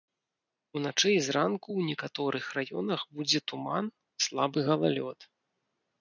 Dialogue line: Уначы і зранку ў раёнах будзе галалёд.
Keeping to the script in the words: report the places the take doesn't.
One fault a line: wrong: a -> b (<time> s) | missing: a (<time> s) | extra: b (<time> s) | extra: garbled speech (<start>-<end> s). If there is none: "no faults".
extra: некаторых (1.9 s)
extra: туман слабы (3.5 s)